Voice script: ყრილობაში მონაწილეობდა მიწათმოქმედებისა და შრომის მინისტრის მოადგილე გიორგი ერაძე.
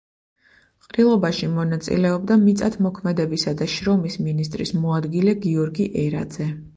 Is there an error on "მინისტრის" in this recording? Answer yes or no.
no